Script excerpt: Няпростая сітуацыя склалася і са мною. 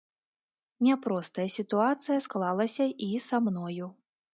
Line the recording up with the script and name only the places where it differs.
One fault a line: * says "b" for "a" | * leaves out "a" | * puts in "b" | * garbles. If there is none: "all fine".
all fine